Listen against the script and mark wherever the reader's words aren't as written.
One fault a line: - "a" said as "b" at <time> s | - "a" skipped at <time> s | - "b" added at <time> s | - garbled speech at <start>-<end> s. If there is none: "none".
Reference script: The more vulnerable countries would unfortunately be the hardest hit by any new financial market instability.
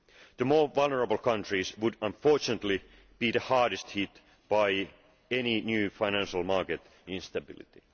none